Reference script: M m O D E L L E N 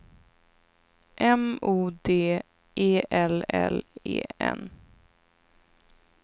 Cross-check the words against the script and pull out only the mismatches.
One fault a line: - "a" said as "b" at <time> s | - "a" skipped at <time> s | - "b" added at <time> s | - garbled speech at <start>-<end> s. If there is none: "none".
- "m" skipped at 1.6 s